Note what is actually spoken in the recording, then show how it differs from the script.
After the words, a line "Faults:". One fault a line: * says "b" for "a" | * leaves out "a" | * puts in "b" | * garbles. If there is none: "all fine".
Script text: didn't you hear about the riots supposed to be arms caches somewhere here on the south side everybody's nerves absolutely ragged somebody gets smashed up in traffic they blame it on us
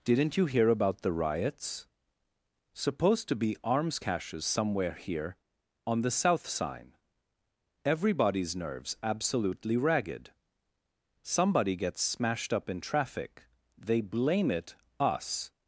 didn't you hear about the riots supposed to be arms caches somewhere here on the south sign everybody's nerves absolutely ragged somebody gets smashed up in traffic they blame it us
Faults:
* says "sign" for "side"
* leaves out "on"